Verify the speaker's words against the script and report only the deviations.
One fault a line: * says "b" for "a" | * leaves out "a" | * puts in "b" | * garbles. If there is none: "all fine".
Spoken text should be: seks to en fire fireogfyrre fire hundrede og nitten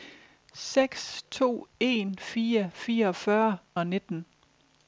* leaves out "fire hundrede"